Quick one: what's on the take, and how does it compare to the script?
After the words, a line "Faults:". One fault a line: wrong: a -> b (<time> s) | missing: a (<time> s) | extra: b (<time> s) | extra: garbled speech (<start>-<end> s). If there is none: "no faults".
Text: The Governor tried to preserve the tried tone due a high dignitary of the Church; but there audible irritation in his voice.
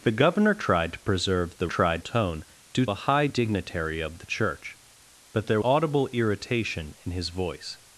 The Governor tried to preserve the tried tone due a high dignitary of the Church; but there audible irritation in his voice.
Faults:
no faults